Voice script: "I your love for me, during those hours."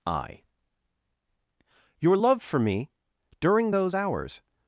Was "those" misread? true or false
false